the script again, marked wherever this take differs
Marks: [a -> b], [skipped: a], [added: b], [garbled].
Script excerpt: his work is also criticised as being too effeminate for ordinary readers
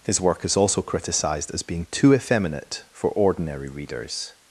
his work is also criticised as being too effeminate for ordinary readers